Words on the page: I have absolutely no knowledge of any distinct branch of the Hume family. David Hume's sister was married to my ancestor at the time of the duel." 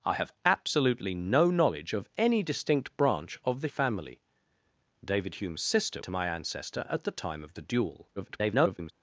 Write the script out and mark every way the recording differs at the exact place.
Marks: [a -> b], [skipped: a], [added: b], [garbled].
I have absolutely no knowledge of any distinct branch of the [skipped: Hume] family. David Hume's sister [skipped: was married] to my ancestor at the time of the duel." [garbled]